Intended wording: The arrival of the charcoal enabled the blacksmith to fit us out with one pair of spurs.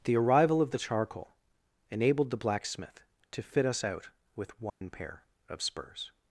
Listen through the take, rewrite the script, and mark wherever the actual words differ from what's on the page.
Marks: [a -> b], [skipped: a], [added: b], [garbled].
The arrival of the charcoal enabled the blacksmith to fit us out with one pair of spurs.